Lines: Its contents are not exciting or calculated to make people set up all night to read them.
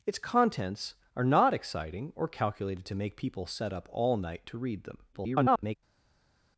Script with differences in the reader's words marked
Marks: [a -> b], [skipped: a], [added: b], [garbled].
Its contents are not exciting or calculated to make people set up all night to read them. [garbled]